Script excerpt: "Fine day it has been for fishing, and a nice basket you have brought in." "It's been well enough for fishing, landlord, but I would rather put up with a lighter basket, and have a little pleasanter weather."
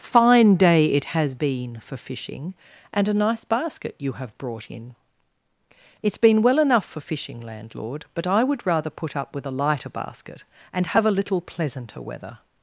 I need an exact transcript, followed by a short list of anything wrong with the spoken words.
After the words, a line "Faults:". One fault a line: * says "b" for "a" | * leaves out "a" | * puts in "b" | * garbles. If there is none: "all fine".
"Fine day it has been for fishing, and a nice basket you have brought in." "It's been well enough for fishing, landlord, but I would rather put up with a lighter basket, and have a little pleasanter weather."
Faults:
all fine